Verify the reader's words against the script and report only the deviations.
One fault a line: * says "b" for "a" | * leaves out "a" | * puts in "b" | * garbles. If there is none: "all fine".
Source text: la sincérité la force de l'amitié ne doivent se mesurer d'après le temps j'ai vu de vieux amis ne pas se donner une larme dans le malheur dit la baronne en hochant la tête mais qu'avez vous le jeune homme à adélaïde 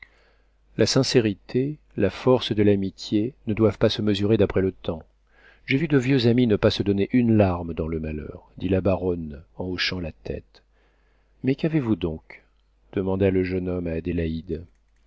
* puts in "pas"
* puts in "donc demanda"